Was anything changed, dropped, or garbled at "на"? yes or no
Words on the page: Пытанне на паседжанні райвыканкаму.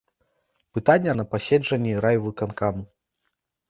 no